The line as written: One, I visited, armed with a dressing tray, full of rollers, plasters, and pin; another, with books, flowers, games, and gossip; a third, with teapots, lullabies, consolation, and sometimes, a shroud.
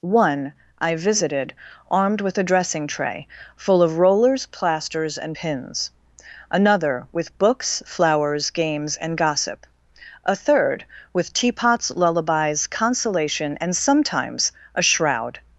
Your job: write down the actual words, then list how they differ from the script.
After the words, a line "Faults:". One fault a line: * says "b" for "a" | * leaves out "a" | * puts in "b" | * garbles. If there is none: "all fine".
One, I visited, armed with a dressing tray, full of rollers, plasters, and pins; another, with books, flowers, games, and gossip; a third, with teapots, lullabies, consolation, and sometimes, a shroud.
Faults:
* says "pins" for "pin"